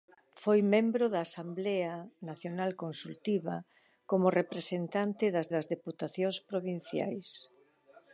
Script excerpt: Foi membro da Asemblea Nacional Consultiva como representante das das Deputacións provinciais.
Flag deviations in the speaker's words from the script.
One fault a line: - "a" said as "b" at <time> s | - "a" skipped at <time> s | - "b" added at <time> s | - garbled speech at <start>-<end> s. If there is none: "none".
none